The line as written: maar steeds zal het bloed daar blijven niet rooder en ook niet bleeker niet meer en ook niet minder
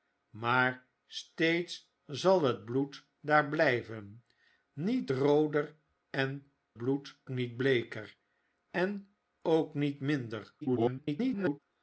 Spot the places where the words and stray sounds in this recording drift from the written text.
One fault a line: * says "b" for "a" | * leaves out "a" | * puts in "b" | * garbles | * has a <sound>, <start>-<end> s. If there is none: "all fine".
* says "bloed" for "ook"
* leaves out "niet meer"
* garbles